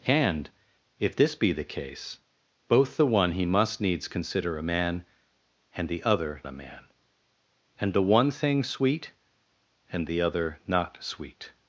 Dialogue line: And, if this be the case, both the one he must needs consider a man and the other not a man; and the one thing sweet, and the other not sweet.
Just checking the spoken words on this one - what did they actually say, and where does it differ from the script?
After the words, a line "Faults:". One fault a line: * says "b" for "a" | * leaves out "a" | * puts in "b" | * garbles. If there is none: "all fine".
And, if this be the case, both the one he must needs consider a man and the other a man; and the one thing sweet, and the other not sweet.
Faults:
* leaves out "not"